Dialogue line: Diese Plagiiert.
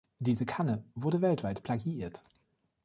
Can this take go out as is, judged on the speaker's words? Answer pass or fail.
fail